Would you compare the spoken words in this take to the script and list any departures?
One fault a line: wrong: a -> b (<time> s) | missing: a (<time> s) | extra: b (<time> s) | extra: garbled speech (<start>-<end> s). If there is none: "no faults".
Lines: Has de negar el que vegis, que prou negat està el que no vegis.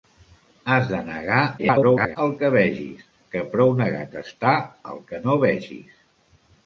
extra: garbled speech (1.6-2.2 s)